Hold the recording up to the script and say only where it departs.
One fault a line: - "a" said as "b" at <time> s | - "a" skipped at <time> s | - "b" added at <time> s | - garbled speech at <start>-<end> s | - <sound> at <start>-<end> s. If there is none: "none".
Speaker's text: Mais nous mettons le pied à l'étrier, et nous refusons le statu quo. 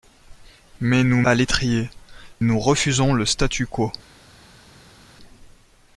- "mettons le pied" skipped at 1.2 s
- "et" skipped at 1.9 s